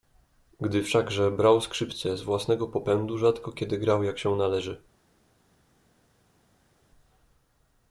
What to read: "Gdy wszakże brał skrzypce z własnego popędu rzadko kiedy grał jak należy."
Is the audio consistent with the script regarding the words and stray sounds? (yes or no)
no